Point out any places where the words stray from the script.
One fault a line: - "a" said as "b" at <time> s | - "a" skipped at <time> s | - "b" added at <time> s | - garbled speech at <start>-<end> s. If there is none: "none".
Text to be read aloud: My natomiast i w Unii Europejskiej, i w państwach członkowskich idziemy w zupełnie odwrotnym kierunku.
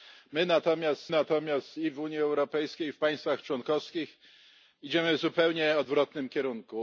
- "natomiast" added at 1.1 s